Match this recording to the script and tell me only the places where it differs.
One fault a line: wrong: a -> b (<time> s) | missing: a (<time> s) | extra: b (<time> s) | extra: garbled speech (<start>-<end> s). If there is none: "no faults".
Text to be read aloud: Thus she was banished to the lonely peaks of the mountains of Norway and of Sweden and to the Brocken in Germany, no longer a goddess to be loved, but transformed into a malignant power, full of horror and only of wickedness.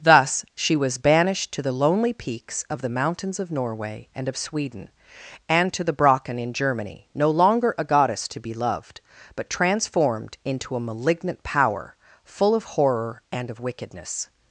missing: only (13.5 s)